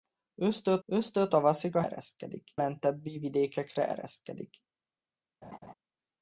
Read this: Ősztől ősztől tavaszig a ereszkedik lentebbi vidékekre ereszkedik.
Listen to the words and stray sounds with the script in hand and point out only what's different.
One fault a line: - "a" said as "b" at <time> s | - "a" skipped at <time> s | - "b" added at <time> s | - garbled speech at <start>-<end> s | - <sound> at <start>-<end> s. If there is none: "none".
- laugh at 5.4-5.7 s